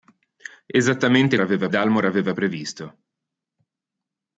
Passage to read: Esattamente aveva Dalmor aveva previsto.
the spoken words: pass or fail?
pass